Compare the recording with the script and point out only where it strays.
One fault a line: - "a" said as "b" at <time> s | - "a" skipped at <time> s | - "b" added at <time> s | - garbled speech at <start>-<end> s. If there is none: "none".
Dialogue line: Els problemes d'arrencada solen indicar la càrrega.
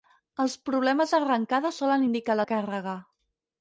none